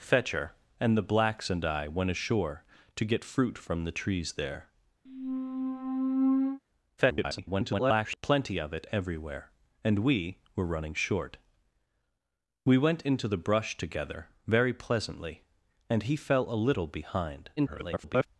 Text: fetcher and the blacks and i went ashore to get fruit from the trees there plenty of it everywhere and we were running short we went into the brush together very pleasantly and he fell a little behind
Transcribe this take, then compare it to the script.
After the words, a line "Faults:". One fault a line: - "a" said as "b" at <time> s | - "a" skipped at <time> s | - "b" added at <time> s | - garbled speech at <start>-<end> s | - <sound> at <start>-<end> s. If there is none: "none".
fetcher and the blacks and i went ashore to get fruit from the trees there [garbled] plenty of it everywhere and we were running short we went into the brush together very pleasantly and he fell a little behind [garbled]
Faults:
- squeak at 5.1-6.6 s
- garbled speech at 7.0-8.2 s
- garbled speech at 17.6-18.3 s